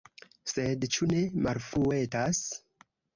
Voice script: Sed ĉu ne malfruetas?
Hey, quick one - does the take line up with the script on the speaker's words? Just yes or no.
yes